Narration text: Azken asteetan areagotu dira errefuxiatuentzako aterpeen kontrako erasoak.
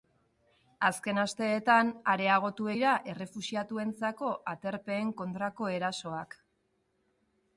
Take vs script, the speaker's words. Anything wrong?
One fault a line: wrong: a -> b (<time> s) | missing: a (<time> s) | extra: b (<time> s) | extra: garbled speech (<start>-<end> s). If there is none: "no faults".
no faults